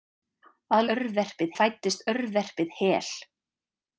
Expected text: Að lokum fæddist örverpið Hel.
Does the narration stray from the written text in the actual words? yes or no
yes